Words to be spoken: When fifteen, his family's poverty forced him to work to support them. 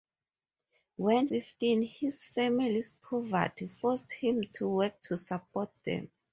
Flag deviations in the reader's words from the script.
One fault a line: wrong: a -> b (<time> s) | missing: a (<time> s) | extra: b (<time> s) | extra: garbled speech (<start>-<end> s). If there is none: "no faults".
no faults